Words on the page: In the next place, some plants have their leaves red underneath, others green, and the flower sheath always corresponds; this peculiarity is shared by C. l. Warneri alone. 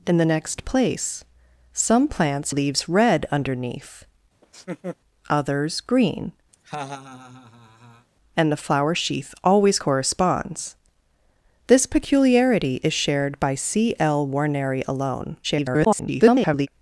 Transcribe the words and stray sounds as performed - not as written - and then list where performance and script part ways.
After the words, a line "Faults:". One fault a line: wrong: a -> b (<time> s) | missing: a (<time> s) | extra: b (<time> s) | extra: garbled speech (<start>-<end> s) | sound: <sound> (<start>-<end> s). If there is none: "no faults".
In the next place, some plants leaves red underneath, others green, and the flower sheath always corresponds; this peculiarity is shared by C. l. Warneri alone. [garbled]
Faults:
missing: have their (2.5 s)
sound: laugh (4.4-5.0 s)
sound: laugh (6.5-8.1 s)
extra: garbled speech (15.4-16.7 s)